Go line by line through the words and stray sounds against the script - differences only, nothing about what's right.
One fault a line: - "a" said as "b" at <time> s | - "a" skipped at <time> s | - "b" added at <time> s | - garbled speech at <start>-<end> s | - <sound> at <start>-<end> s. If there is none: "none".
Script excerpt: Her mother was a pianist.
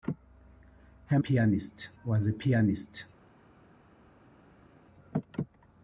- "mother" said as "pianist" at 1.2 s